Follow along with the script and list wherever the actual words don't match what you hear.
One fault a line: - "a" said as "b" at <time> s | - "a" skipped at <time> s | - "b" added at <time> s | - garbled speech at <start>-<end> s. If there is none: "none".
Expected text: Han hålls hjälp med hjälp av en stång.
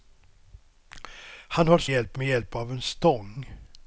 none